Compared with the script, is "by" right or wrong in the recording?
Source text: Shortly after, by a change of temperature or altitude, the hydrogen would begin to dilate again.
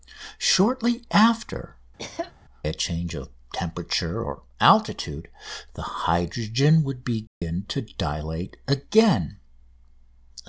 wrong